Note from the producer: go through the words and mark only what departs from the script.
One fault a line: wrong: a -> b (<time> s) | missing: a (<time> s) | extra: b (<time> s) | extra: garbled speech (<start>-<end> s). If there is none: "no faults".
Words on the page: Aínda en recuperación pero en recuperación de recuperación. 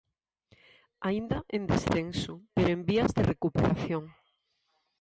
wrong: recuperación -> descenso (1.7 s)
wrong: recuperación -> vías (2.9 s)